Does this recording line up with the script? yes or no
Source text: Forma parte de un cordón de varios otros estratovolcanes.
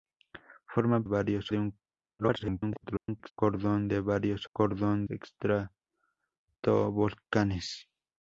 no